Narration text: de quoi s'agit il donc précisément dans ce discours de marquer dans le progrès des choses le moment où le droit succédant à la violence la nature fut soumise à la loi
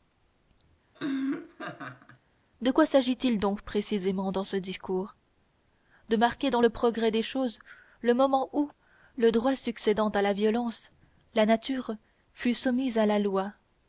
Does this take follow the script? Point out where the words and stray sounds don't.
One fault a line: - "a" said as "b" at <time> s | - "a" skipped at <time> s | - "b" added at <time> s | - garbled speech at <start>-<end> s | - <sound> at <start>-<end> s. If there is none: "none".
- laugh at 0.9-2.2 s